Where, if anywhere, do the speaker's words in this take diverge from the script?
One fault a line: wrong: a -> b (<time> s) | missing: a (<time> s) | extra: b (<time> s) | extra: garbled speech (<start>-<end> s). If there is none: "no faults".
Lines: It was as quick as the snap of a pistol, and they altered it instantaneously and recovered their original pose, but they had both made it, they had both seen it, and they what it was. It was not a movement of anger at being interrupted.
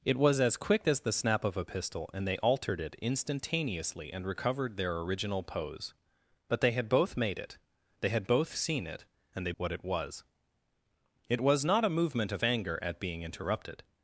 no faults